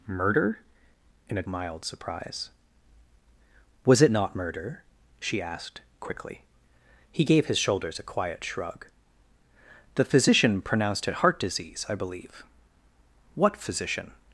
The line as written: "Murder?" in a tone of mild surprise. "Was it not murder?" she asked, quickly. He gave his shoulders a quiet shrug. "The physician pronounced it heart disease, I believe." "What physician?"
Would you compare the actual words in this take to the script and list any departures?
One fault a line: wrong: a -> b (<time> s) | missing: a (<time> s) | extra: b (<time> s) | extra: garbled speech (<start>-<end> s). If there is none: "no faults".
missing: tone of (1.4 s)